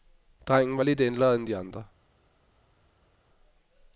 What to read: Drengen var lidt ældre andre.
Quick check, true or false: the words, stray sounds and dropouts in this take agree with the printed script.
false